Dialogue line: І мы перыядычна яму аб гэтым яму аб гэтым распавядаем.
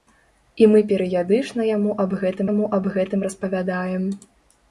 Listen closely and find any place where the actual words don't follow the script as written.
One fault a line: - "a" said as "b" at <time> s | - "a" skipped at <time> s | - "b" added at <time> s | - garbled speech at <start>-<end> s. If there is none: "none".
none